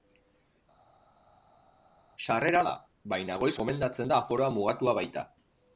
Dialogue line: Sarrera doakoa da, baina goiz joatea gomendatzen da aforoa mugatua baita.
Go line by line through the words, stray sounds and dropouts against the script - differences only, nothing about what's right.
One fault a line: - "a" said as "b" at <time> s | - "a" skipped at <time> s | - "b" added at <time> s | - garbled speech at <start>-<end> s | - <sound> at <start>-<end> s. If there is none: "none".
- "doakoa" skipped at 2.6 s
- "joatea" skipped at 3.5 s